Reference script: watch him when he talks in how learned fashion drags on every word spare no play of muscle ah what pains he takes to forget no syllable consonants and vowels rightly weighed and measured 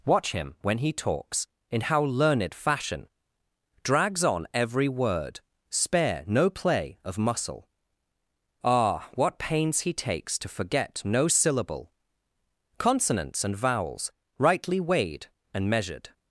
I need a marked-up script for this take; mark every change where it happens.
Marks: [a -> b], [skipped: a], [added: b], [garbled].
watch him when he talks in how learned fashion drags on every word spare no play of muscle ah what pains he takes to forget no syllable consonants and vowels rightly weighed and measured